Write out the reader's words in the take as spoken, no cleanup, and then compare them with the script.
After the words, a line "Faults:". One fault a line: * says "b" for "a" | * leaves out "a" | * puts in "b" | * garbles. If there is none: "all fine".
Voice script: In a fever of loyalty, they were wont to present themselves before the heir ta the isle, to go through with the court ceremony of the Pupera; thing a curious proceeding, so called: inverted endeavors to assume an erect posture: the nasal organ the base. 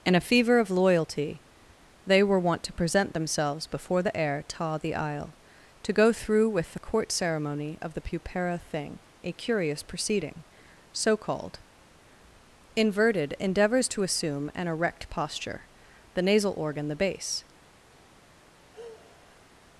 In a fever of loyalty, they were wont to present themselves before the heir ta the isle, to go through with the court ceremony of the Pupera; thing a curious proceeding, so called: inverted endeavors to assume an erect posture: the nasal organ the base.
Faults:
all fine